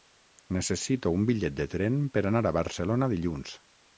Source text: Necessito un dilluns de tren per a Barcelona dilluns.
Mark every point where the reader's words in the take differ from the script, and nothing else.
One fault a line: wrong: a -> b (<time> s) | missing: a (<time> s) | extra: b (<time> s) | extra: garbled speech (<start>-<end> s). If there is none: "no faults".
wrong: dilluns -> bitllet (1.3 s)
extra: anar (2.3 s)